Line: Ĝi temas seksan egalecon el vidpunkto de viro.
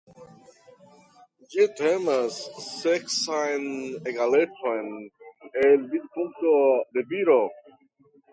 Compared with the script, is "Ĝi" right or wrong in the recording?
right